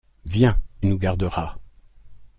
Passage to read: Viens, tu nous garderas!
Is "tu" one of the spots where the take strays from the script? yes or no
yes